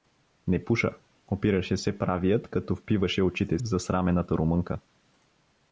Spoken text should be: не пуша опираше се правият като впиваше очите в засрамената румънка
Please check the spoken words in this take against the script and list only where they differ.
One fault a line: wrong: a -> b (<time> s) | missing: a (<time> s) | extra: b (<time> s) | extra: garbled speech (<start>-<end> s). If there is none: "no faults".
no faults